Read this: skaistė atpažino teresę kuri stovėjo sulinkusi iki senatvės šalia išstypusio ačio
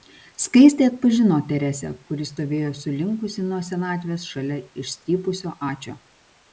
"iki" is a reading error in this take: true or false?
true